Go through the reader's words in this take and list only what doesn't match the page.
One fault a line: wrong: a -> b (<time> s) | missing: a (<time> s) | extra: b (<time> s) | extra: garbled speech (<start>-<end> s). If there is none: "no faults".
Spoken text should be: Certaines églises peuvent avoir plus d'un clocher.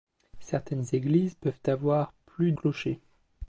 missing: d'un (2.5 s)